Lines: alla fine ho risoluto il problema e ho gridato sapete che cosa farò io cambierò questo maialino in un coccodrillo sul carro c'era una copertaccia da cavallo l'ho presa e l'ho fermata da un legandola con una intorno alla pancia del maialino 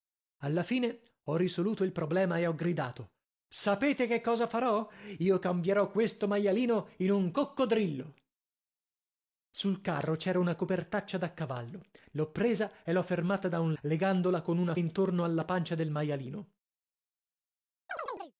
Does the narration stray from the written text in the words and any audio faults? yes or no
yes